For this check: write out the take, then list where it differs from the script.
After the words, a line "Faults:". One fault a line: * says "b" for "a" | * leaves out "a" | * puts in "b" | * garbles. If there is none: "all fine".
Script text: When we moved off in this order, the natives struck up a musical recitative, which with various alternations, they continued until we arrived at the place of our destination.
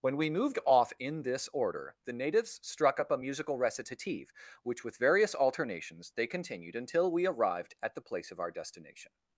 When we moved off in this order, the natives struck up a musical recitative, which with various alternations, they continued until we arrived at the place of our destination.
Faults:
all fine